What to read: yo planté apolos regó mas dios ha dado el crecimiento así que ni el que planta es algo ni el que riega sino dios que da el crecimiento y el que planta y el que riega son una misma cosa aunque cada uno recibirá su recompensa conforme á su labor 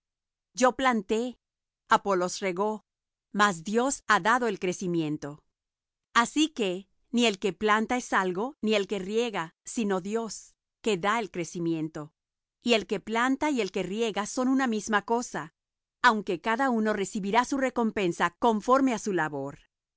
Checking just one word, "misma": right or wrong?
right